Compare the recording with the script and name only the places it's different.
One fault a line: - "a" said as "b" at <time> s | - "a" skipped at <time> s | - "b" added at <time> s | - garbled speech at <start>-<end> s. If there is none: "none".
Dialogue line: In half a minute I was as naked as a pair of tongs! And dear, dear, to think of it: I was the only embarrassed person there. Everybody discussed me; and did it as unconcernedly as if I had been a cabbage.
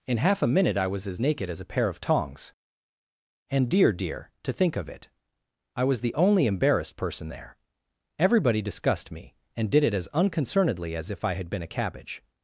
none